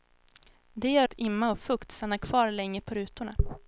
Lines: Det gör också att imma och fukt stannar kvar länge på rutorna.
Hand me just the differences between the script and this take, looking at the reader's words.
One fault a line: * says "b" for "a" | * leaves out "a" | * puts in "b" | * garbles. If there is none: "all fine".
* leaves out "också"